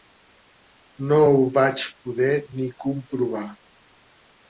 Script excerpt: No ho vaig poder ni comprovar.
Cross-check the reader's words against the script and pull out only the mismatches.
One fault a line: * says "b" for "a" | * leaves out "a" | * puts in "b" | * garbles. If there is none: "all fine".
all fine